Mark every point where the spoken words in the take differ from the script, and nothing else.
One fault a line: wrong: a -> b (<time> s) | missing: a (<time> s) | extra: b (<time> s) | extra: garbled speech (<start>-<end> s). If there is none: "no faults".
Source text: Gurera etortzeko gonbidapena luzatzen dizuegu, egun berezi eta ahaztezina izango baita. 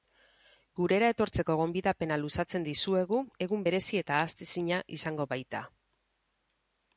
no faults